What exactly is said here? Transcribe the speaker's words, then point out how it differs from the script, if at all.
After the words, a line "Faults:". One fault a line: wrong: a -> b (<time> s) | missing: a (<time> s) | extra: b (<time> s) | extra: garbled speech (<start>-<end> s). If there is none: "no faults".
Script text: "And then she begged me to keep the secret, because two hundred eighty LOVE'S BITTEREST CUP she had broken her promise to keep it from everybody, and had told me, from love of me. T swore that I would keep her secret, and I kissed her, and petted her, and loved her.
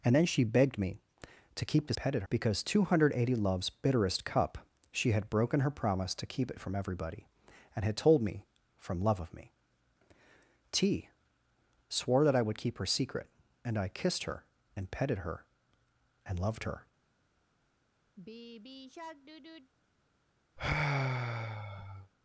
"And then she begged me to keep the petted, because two hundred eighty LOVE'S BITTEREST CUP she had broken her promise to keep it from everybody, and had told me, from love of me. T swore that I would keep her secret, and I kissed her, and petted her, and loved her.
Faults:
wrong: secret -> petted (1.9 s)